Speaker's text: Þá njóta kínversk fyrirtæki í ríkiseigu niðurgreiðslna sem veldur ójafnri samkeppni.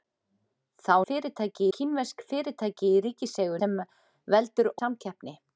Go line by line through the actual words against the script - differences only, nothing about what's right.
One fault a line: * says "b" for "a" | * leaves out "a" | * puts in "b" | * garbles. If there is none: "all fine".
* says "fyrirtæki" for "njóta"
* leaves out "niðurgreiðslna"
* leaves out "ójafnri"